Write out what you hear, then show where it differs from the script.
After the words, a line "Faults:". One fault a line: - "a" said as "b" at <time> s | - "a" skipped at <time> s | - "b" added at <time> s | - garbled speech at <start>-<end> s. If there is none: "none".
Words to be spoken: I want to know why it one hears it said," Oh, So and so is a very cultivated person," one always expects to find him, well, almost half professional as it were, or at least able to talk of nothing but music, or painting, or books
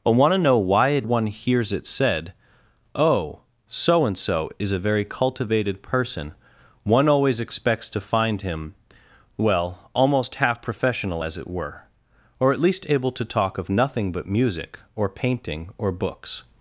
I want to know why it one hears it said," Oh, So and so is a very cultivated person," one always expects to find him, well, almost half professional as it were, or at least able to talk of nothing but music, or painting, or books
Faults:
none